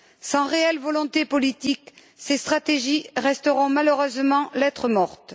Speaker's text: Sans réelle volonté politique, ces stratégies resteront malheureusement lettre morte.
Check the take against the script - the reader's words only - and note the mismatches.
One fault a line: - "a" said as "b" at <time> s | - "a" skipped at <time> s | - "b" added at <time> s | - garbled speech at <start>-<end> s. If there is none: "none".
none